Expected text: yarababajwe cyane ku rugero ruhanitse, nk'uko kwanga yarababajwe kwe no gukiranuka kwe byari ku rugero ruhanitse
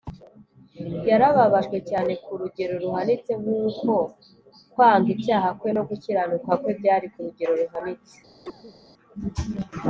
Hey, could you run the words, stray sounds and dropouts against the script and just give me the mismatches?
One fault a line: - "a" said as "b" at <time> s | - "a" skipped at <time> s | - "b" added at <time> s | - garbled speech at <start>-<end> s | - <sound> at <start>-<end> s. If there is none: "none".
- "yarababajwe" said as "icyaha" at 5.2 s
- cough at 8.4-8.8 s